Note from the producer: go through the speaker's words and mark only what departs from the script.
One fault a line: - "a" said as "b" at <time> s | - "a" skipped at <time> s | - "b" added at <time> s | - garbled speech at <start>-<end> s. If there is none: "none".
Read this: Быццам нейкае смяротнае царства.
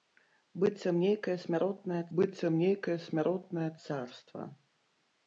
- "быццам нейкае смяротнае" added at 2.2 s